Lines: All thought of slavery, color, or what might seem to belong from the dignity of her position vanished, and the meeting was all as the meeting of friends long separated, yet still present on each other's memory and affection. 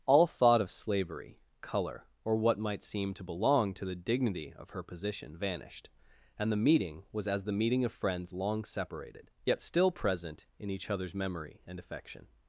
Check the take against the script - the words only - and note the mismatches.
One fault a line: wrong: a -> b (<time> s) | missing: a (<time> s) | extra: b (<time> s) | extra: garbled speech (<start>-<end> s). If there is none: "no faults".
wrong: from -> to (3.8 s)
missing: all (7.3 s)
wrong: on -> in (10.6 s)